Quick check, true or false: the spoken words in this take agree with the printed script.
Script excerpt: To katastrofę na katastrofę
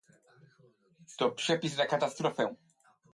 false